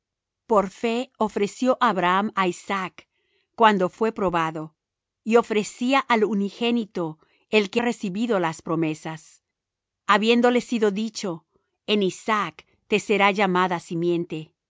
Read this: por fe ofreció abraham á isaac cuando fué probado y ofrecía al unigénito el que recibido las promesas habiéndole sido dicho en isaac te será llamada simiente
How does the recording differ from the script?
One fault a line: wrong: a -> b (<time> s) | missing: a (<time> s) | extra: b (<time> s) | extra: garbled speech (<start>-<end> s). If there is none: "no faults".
no faults